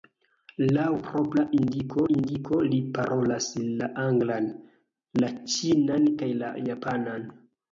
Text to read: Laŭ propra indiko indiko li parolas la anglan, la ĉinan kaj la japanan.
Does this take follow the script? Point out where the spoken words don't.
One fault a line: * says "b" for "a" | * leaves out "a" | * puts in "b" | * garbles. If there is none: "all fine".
all fine